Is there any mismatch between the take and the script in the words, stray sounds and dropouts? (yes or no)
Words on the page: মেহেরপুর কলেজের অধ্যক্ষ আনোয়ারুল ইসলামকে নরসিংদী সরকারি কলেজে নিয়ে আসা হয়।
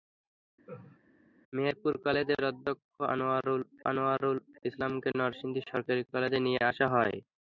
yes